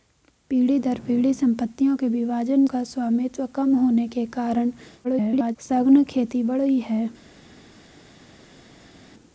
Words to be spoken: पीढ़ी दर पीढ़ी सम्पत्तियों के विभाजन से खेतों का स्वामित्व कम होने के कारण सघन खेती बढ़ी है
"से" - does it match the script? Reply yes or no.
no